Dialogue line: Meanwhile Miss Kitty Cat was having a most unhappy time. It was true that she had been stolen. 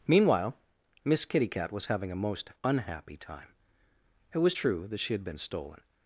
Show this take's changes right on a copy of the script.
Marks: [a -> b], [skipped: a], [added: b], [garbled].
Meanwhile Miss Kitty Cat was having a most unhappy time. It was true that she had been stolen.